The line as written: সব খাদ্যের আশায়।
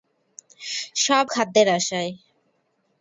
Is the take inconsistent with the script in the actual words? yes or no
no